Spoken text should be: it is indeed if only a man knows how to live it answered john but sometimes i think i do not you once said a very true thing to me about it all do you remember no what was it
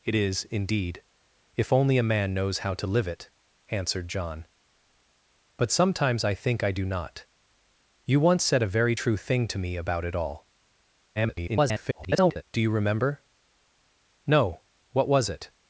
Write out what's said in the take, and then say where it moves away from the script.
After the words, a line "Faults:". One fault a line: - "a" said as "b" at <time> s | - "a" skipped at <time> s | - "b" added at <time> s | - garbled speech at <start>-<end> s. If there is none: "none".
it is indeed if only a man knows how to live it answered john but sometimes i think i do not you once said a very true thing to me about it all [garbled] do you remember no what was it
Faults:
- garbled speech at 11.2-12.4 s